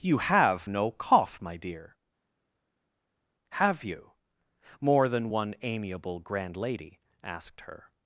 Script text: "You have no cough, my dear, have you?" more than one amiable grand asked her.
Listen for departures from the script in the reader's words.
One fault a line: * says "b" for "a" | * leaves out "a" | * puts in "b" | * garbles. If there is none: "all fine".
* puts in "lady"